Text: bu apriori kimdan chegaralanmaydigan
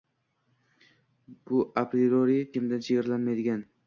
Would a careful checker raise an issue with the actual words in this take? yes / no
no